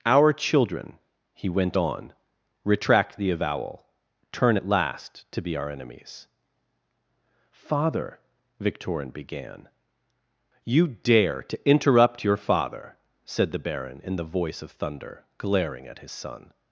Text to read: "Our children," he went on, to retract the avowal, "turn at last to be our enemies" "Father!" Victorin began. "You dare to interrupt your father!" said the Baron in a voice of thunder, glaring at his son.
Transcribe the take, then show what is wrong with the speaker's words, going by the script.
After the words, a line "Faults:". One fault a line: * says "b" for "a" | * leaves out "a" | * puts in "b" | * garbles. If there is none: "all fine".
"Our children," he went on, retract the avowal, "turn at last to be our enemies" "Father!" Victorin began. "You dare to interrupt your father!" said the Baron in the voice of thunder, glaring at his son.
Faults:
* leaves out "to"
* says "the" for "a"